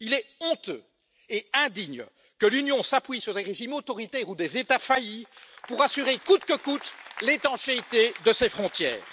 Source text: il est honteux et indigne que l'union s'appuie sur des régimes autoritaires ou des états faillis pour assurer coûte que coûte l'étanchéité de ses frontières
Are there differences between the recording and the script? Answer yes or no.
no